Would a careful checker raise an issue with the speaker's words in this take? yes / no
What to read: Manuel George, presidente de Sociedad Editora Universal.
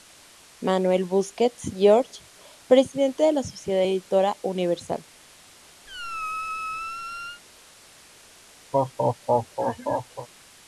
yes